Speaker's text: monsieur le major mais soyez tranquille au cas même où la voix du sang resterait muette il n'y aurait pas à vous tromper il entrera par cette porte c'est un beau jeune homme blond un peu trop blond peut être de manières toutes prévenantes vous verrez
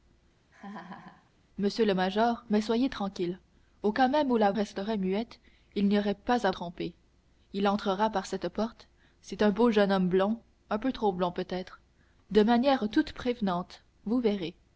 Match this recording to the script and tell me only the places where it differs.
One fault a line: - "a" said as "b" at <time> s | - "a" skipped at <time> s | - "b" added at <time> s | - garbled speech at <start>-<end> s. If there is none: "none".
- "voix du sang" skipped at 4.5 s
- "vous" skipped at 6.5 s